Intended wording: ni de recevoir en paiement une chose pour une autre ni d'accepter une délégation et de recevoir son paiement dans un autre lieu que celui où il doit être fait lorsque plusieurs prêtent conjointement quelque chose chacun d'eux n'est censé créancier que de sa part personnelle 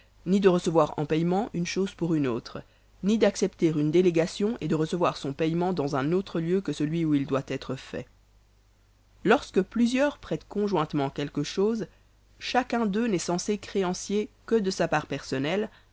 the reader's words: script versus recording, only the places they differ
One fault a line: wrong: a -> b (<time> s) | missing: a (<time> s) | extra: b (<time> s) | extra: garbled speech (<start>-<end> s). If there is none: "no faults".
no faults